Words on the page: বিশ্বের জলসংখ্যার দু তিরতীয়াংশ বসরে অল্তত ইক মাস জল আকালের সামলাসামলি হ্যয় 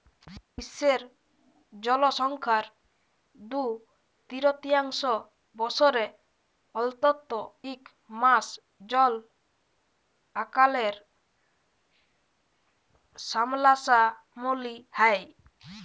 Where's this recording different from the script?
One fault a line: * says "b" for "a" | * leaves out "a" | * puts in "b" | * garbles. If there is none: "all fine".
all fine